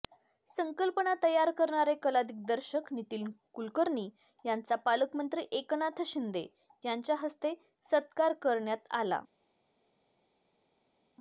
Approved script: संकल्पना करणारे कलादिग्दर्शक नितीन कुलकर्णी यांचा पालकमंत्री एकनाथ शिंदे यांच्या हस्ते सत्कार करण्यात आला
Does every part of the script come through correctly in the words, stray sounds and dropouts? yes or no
no